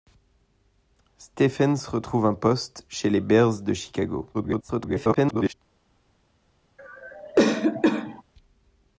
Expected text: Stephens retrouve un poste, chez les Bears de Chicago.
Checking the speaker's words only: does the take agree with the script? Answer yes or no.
no